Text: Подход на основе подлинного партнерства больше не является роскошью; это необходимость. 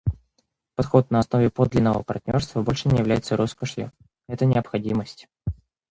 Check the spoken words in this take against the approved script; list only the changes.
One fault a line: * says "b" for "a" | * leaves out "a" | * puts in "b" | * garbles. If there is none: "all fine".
all fine